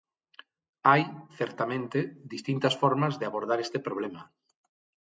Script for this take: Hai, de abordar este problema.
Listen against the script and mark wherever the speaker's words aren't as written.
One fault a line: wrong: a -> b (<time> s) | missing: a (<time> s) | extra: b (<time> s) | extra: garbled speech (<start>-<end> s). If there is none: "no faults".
extra: certamente distintas formas (1.4 s)